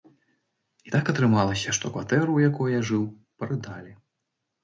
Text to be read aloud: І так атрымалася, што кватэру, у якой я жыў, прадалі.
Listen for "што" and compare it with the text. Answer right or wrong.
right